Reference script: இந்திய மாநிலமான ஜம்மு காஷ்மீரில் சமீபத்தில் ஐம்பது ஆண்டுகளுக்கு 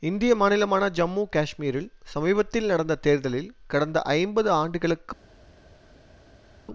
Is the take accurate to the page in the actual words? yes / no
no